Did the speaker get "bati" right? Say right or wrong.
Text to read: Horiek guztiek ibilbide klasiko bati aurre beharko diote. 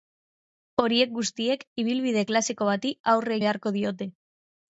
right